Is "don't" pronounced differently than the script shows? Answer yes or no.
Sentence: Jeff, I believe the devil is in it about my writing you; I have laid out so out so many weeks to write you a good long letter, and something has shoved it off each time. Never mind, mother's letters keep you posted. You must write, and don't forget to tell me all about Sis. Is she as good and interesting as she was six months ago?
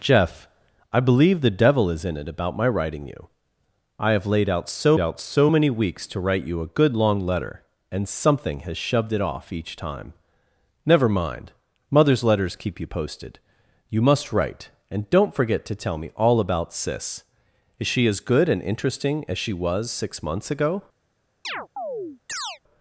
no